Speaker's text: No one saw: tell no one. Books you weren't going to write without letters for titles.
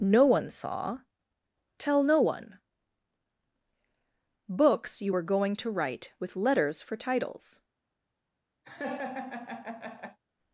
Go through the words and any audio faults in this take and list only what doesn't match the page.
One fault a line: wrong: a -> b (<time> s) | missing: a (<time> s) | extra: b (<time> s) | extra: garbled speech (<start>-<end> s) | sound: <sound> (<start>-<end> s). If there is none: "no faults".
wrong: weren't -> were (5.1 s)
wrong: without -> with (6.2 s)
sound: laugh (8.6-10.2 s)